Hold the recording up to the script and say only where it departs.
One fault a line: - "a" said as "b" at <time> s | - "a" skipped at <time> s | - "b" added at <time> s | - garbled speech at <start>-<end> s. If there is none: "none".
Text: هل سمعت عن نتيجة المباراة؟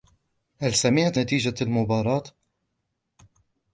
- "عن" skipped at 1.2 s